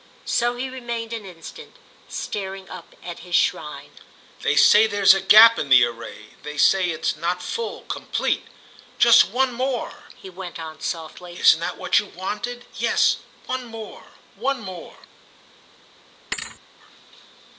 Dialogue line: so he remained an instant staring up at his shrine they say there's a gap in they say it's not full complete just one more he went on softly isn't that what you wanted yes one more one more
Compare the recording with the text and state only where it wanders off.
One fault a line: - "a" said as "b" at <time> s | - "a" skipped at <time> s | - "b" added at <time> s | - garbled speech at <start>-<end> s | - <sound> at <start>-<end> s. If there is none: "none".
- "the array" added at 5.7 s
- thud at 16.3-16.6 s